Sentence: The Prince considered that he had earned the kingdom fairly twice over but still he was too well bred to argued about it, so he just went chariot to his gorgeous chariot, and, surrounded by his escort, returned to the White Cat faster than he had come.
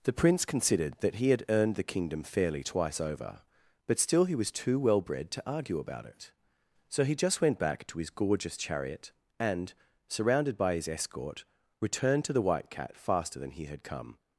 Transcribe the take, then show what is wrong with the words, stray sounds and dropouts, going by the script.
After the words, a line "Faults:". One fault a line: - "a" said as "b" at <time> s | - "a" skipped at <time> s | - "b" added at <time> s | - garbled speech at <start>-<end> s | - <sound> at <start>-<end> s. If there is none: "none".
The Prince considered that he had earned the kingdom fairly twice over but still he was too well bred to argue about it, so he just went back to his gorgeous chariot, and, surrounded by his escort, returned to the White Cat faster than he had come.
Faults:
- "argued" said as "argue" at 5.5 s
- "chariot" said as "back" at 7.6 s